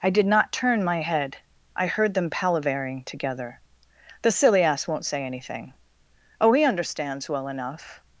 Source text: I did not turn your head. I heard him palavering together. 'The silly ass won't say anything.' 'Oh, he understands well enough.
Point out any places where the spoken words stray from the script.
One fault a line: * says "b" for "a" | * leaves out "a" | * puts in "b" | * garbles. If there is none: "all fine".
* says "my" for "your"
* says "them" for "him"